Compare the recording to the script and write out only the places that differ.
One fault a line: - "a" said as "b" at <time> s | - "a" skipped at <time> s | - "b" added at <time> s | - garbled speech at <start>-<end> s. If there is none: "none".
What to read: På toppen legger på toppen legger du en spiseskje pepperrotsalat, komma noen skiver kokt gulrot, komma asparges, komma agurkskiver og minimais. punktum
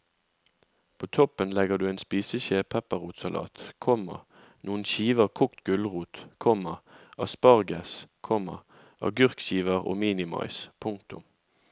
- "på toppen legger" skipped at 1.8 s